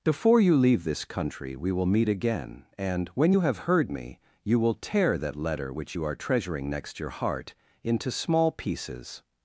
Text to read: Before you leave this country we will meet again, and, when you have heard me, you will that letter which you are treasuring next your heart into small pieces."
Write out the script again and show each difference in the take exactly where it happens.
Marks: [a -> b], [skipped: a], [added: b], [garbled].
Before you leave this country we will meet again, and, when you have heard me, you will [added: tear] that letter which you are treasuring next your heart into small pieces."